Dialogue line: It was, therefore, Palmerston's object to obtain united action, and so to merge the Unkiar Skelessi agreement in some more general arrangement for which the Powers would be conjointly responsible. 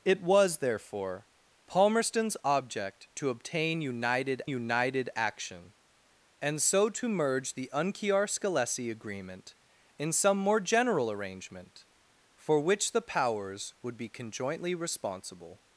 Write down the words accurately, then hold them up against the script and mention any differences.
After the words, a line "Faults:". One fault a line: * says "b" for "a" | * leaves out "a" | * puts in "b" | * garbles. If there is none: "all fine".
It was, therefore, Palmerston's object to obtain united united action, and so to merge the Unkiar Skelessi agreement in some more general arrangement for which the Powers would be conjointly responsible.
Faults:
* puts in "united"